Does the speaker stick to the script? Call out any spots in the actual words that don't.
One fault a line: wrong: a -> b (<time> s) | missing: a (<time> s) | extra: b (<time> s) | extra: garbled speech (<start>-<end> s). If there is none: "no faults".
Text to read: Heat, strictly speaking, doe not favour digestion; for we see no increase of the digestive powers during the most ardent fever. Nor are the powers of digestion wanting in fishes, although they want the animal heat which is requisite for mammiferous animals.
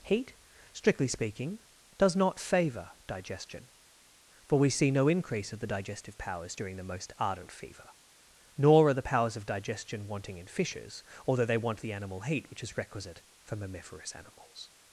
wrong: doe -> does (2.0 s)